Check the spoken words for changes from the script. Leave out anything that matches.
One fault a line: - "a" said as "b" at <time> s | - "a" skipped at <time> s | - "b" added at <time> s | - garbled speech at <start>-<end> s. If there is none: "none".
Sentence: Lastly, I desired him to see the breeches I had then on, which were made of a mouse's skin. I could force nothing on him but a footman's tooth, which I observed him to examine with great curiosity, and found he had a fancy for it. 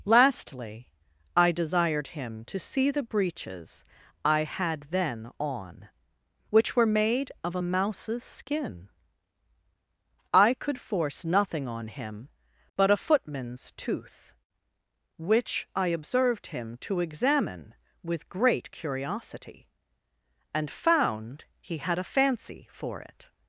none